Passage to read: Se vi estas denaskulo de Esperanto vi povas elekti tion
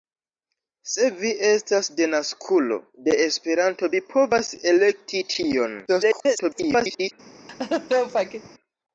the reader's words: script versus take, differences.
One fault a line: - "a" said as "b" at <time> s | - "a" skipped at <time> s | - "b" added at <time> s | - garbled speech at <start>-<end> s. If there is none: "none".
- garbled speech at 5.9-7.1 s